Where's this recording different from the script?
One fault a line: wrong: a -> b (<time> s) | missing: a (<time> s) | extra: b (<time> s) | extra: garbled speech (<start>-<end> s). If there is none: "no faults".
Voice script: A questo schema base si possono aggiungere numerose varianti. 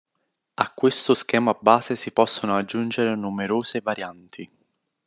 no faults